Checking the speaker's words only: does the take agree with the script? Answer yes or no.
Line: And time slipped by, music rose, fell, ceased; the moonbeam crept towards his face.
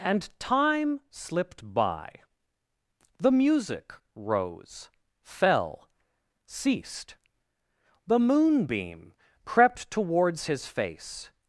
no